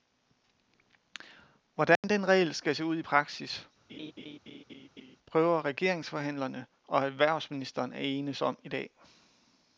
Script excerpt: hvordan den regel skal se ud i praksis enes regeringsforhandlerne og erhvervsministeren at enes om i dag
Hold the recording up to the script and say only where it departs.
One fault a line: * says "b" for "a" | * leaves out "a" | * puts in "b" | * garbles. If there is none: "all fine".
* says "prøver" for "enes"